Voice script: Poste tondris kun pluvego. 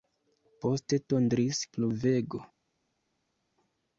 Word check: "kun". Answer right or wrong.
wrong